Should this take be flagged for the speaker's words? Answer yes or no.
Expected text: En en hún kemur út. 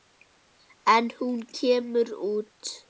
yes